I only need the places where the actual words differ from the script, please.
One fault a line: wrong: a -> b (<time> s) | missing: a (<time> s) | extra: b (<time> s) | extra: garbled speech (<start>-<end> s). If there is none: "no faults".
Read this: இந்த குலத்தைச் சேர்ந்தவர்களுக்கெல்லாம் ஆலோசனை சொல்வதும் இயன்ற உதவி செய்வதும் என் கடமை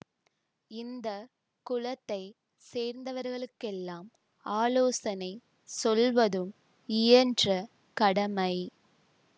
missing: உதவி செய்வதும் என் (7.5 s)